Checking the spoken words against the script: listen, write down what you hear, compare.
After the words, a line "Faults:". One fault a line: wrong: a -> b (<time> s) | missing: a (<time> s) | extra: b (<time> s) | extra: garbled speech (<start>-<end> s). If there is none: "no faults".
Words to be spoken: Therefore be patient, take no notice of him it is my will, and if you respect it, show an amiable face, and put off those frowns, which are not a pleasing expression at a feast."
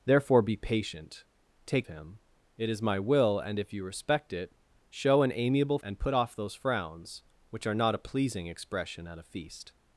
Therefore be patient, take him it is my will, and if you respect it, show an amiable and put off those frowns, which are not a pleasing expression at a feast."
Faults:
missing: no notice of (1.9 s)
missing: face (5.8 s)